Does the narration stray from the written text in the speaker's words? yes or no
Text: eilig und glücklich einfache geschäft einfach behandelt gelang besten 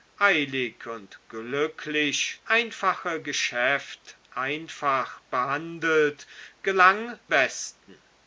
no